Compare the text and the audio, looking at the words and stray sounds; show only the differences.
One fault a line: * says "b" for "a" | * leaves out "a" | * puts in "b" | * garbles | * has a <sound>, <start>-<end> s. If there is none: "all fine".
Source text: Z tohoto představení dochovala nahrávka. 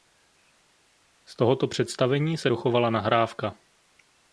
* puts in "se"